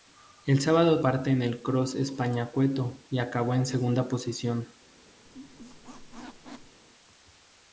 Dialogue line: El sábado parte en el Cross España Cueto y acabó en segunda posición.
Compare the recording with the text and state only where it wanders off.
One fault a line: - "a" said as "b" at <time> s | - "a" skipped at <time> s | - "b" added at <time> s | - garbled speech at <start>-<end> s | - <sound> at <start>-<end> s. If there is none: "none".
- squeak at 5.2-6.8 s